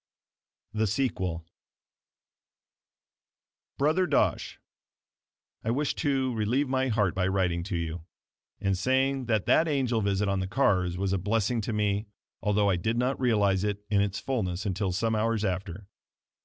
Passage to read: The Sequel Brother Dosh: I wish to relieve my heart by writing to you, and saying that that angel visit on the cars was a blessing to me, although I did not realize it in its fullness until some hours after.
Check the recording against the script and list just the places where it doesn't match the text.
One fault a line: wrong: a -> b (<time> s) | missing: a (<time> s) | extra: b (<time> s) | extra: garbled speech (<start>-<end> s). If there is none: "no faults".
no faults